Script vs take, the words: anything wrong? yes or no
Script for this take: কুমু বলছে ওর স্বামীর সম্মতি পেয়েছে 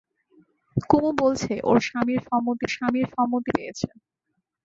yes